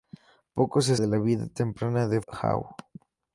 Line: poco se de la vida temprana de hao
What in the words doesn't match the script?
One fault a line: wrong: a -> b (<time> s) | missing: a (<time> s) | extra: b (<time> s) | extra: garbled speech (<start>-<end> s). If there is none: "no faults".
no faults